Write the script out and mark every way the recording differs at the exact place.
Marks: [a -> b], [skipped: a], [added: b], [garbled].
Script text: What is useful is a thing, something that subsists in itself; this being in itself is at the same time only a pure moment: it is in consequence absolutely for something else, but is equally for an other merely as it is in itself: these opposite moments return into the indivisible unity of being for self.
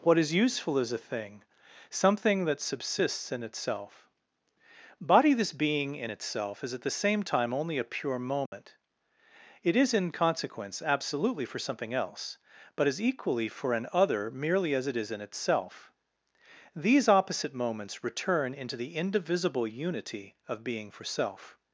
What is useful is a thing, something that subsists in itself; [added: body] this being in itself is at the same time only a pure moment: it is in consequence absolutely for something else, but is equally for an other merely as it is in itself: these opposite moments return into the indivisible unity of being for self.